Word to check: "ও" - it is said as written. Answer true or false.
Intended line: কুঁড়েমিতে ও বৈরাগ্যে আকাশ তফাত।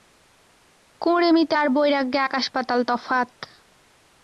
false